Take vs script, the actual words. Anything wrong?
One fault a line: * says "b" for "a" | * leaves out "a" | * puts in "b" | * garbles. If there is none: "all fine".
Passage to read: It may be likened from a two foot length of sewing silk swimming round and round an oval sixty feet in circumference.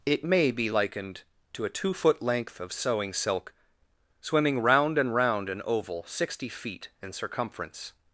* says "to" for "from"